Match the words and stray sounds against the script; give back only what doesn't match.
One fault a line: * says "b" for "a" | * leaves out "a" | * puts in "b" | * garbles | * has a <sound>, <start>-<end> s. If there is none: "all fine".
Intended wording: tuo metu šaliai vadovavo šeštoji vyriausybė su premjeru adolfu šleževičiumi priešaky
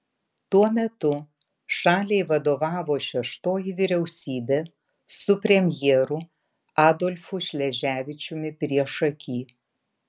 all fine